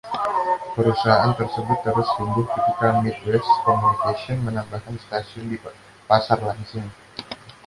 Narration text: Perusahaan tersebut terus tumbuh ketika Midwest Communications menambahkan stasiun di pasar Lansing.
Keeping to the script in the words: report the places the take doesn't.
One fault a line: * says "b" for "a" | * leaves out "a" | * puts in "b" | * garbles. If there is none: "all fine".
all fine